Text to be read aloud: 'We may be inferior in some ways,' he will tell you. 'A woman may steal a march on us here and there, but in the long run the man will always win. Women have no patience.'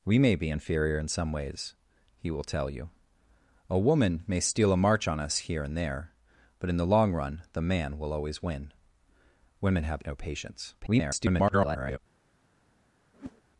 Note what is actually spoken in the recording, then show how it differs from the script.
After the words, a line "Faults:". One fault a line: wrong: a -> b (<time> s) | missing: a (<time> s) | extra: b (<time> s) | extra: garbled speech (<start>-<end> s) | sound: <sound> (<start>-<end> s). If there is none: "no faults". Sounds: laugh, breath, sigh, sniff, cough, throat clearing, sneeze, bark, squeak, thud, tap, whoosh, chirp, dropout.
'We may be inferior in some ways,' he will tell you. 'A woman may steal a march on us here and there, but in the long run the man will always win. Women have no patience.' [garbled]
Faults:
extra: garbled speech (10.8-12.0 s)
sound: whoosh (13.1-13.4 s)